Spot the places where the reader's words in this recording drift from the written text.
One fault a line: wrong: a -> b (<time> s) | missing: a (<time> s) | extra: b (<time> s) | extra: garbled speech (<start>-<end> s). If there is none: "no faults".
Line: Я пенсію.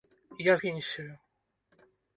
no faults